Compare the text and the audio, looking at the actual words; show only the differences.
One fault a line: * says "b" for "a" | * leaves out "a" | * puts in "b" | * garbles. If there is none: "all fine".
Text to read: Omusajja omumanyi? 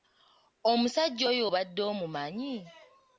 * puts in "oyo obadde"